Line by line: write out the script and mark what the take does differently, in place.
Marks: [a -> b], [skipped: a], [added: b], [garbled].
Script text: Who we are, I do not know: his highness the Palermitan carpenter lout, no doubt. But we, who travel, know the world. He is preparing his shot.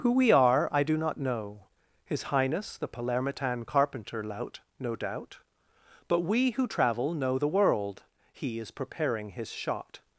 Who we are, I do not know: his highness the Palermitan carpenter lout, no doubt. But we, who travel, know the world. He is preparing his shot.